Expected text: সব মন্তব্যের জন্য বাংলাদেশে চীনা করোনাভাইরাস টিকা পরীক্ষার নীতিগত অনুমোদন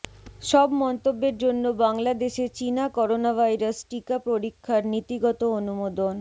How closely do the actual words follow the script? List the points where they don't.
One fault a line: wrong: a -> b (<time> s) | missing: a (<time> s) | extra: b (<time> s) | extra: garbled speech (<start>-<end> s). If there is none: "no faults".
no faults